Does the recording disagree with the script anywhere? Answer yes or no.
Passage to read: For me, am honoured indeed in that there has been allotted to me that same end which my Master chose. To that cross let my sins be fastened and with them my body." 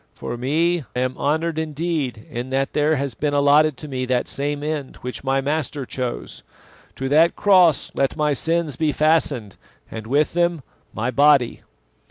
no